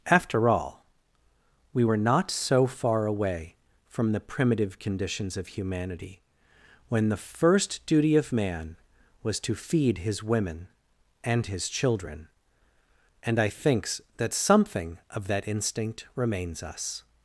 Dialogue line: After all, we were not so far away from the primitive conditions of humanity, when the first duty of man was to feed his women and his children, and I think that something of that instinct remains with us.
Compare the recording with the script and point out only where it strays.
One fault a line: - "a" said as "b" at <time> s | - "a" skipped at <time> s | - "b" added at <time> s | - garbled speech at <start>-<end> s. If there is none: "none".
- "think" said as "thinks" at 13.5 s
- "with" skipped at 16.6 s